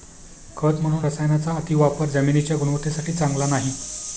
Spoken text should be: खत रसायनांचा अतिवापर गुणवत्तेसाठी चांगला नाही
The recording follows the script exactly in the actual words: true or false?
false